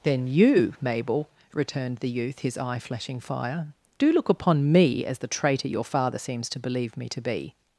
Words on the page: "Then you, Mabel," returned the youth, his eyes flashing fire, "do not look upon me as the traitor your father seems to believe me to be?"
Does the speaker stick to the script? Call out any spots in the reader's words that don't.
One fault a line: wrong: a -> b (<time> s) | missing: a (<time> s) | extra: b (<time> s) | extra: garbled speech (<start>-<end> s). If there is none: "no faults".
wrong: eyes -> eye (2.6 s)
missing: not (4.1 s)